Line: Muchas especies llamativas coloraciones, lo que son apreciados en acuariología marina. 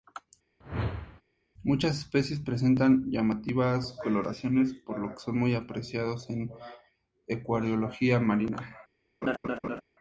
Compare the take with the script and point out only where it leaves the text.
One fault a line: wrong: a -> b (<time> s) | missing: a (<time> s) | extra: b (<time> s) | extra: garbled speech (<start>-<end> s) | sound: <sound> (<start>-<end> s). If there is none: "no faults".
sound: whoosh (0.6-1.2 s)
extra: presentan (2.4 s)
extra: por (4.7 s)
extra: muy (5.4 s)
sound: laugh (9.2-9.8 s)